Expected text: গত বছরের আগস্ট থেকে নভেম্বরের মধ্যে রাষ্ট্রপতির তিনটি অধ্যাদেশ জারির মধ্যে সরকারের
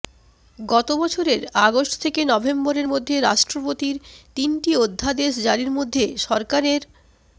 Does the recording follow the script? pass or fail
pass